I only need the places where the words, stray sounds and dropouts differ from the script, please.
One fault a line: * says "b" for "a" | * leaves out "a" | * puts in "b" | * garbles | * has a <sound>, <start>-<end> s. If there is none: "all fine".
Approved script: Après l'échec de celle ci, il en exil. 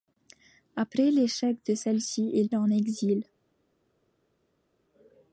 all fine